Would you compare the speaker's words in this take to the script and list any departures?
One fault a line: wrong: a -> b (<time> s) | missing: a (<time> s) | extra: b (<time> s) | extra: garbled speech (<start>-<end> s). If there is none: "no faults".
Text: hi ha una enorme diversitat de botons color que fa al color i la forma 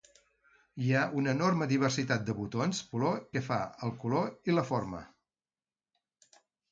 no faults